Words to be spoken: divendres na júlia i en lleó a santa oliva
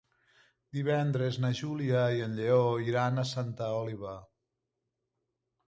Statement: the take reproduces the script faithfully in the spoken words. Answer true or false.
false